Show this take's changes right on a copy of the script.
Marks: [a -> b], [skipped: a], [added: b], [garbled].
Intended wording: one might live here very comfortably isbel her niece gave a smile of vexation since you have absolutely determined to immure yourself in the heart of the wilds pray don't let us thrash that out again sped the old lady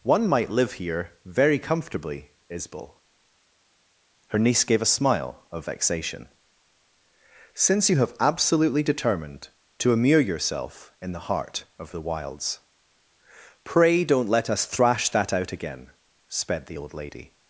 one might live here very comfortably isbel her niece gave a smile of vexation since you have absolutely determined to immure yourself in the heart of the wilds pray don't let us thrash that out again sped the old lady